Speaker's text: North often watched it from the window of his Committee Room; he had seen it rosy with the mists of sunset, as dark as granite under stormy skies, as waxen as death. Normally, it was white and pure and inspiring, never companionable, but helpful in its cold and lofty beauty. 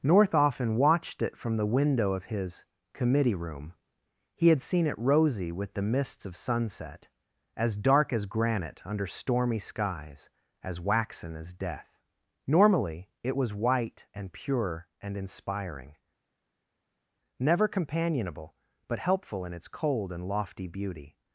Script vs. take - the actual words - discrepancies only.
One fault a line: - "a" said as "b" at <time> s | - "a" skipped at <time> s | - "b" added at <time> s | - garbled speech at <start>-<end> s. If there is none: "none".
none